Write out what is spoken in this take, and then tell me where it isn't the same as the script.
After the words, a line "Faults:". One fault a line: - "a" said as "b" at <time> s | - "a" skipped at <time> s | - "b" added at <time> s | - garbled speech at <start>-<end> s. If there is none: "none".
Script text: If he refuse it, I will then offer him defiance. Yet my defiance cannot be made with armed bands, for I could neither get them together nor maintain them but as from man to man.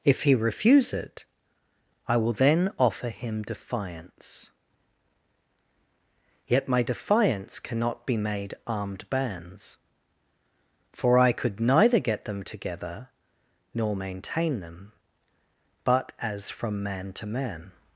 If he refuse it, I will then offer him defiance. Yet my defiance cannot be made armed bands, for I could neither get them together nor maintain them but as from man to man.
Faults:
- "with" skipped at 8.6 s